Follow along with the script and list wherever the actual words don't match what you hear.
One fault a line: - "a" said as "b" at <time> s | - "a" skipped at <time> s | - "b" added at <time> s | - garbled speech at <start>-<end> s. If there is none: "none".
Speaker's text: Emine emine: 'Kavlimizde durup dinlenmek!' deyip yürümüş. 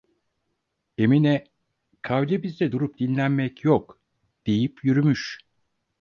- "emine" skipped at 1.5 s
- "yok" added at 3.6 s